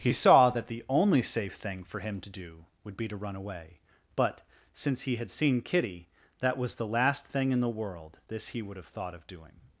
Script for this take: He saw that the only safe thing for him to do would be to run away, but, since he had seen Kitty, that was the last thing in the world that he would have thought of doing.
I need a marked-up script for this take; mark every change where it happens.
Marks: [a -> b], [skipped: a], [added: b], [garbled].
He saw that the only safe thing for him to do would be to run away, but, since he had seen Kitty, that was the last thing in the world [that -> this] he would have thought of doing.